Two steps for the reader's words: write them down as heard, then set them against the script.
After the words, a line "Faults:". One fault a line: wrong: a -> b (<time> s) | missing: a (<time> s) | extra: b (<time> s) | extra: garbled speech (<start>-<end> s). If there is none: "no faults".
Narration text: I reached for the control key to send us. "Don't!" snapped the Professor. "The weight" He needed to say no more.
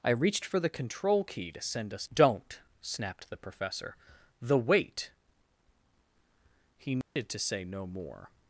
I reached for the control key to send us. "Don't!" snapped the Professor. "The weight" He needed to say no more.
Faults:
no faults